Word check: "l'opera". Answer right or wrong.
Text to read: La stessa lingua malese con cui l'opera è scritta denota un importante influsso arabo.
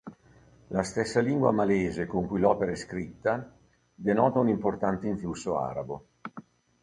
right